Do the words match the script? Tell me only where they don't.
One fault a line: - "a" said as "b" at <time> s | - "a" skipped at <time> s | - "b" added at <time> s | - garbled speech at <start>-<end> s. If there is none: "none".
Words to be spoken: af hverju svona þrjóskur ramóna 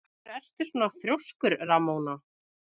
- "ertu" added at 0.4 s